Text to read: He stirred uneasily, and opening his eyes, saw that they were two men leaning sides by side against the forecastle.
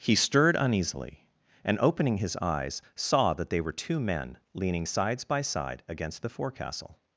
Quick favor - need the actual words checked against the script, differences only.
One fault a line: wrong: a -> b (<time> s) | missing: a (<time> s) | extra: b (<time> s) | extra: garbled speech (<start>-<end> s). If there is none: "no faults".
no faults